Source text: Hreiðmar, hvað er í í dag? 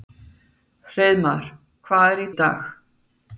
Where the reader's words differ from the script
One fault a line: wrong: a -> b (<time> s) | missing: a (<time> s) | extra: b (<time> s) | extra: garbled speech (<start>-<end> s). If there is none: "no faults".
no faults